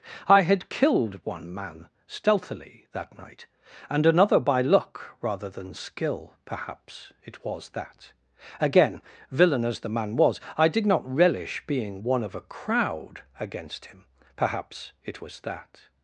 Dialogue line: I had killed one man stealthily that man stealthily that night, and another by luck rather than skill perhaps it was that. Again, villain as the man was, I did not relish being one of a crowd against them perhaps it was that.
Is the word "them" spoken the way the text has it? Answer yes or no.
no